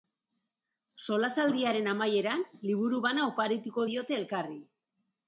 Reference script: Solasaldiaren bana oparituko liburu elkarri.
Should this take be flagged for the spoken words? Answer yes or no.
yes